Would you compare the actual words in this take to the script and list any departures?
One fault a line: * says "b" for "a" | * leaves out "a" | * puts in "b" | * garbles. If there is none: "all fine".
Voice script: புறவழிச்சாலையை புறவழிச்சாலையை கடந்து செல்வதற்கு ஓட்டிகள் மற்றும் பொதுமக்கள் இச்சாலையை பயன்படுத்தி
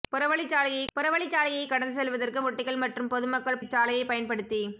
all fine